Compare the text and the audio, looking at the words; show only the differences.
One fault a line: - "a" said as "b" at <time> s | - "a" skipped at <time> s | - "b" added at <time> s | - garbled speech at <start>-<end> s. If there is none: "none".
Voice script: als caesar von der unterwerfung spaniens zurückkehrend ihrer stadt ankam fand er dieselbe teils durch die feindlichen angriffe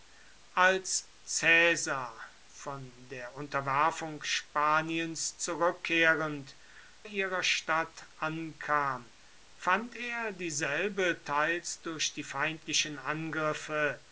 none